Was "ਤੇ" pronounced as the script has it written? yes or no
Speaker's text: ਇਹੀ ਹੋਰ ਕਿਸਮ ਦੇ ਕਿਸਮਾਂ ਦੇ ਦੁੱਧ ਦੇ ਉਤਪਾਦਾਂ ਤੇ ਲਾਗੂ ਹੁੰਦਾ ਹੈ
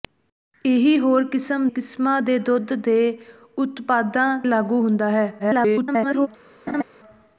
no